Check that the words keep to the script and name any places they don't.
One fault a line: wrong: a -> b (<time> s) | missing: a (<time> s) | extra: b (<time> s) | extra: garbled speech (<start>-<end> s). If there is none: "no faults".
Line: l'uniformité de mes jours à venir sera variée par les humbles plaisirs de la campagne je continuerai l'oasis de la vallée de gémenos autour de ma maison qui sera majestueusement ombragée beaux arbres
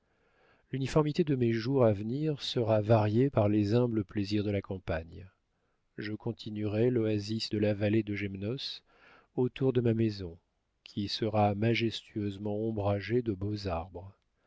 extra: de (13.2 s)